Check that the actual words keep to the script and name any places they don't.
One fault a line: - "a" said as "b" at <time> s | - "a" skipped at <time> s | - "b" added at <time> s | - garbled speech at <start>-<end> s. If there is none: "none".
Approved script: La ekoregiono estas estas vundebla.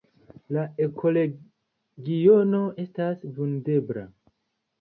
- "estas" skipped at 3.3 s